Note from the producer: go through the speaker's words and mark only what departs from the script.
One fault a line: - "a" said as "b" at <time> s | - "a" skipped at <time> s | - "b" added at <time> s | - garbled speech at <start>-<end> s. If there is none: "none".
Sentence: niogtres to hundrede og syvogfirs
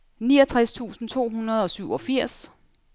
- "tusind" added at 0.7 s